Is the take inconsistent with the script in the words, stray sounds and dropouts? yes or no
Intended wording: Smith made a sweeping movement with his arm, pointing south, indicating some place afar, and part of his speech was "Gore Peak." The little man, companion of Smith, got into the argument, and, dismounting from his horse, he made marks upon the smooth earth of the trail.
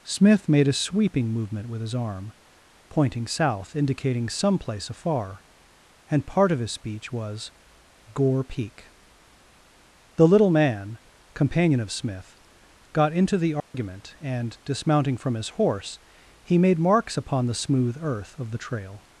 yes